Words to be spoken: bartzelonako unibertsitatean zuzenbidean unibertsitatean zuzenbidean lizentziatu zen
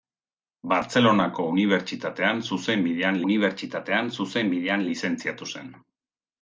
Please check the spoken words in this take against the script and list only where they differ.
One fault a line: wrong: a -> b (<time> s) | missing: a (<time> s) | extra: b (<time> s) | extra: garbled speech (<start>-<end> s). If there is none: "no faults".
no faults